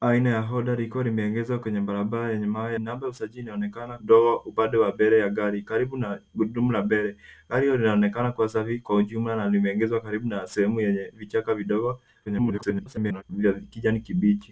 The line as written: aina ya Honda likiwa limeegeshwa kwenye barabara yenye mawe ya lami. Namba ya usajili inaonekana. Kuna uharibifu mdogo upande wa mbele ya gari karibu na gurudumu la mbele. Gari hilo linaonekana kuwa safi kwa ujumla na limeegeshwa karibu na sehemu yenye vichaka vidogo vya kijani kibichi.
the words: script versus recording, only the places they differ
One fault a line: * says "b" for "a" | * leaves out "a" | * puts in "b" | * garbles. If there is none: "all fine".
* leaves out "ya lami"
* leaves out "Kuna uharibifu"
* garbles